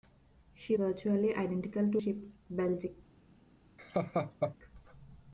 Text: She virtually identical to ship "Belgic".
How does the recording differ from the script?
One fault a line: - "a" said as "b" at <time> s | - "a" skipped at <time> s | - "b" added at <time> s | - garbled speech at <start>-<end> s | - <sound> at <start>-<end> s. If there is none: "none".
- laugh at 3.8-4.6 s